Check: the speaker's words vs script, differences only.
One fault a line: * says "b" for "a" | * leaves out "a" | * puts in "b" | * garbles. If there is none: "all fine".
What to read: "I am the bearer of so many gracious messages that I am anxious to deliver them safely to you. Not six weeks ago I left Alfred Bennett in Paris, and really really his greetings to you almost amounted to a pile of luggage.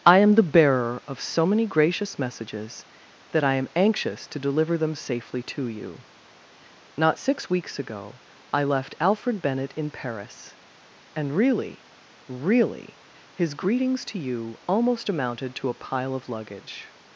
all fine